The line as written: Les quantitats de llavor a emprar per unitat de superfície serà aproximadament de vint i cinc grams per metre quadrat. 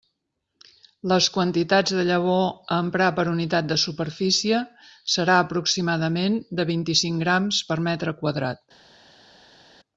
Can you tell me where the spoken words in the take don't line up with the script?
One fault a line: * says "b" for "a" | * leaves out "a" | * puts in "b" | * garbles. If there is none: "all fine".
all fine